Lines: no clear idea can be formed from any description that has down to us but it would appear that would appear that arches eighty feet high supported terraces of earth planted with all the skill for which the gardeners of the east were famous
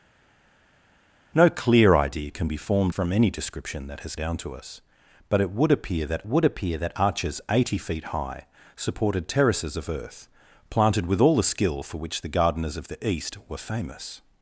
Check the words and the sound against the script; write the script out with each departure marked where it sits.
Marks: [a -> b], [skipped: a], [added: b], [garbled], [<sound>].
no clear idea can be formed from any description that has down to us but it would appear that would appear that arches eighty feet high supported terraces of earth planted with all the skill for which the gardeners of the east were famous